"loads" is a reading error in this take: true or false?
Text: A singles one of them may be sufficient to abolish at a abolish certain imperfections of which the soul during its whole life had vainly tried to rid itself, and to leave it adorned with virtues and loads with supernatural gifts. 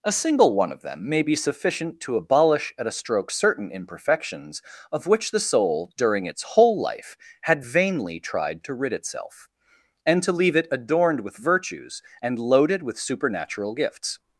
true